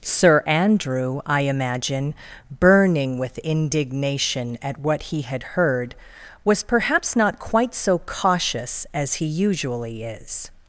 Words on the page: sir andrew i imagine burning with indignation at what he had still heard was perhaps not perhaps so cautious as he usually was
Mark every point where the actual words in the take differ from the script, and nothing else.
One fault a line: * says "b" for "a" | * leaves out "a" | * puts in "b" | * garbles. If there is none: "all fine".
* leaves out "still"
* says "quite" for "perhaps"
* says "is" for "was"